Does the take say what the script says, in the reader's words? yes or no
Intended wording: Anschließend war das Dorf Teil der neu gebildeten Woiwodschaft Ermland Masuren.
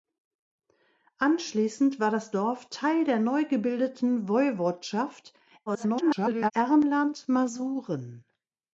no